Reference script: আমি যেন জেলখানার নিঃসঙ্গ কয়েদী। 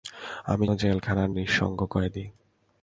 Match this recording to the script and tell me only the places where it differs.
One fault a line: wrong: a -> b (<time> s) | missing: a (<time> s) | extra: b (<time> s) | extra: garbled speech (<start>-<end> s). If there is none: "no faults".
missing: যেন (0.7 s)